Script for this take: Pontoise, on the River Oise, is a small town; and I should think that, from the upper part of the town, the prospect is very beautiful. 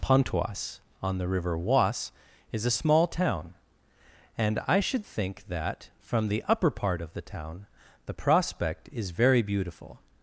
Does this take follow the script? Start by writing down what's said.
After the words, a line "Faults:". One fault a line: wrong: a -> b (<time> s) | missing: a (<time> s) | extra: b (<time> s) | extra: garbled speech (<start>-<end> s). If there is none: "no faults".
Pontoise, on the River Oise, is a small town; and I should think that, from the upper part of the town, the prospect is very beautiful.
Faults:
no faults